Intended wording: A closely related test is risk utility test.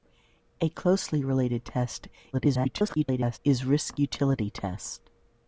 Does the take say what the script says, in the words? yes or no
no